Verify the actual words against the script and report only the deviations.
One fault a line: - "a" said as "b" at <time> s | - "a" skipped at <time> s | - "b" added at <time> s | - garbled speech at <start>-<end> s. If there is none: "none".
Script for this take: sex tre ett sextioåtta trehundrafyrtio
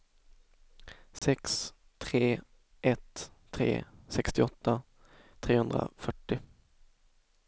- "tre" added at 3.5 s